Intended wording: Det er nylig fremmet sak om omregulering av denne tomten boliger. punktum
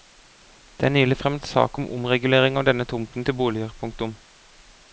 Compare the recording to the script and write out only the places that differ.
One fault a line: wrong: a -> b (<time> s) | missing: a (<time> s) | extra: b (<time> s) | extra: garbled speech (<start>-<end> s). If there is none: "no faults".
extra: til (3.3 s)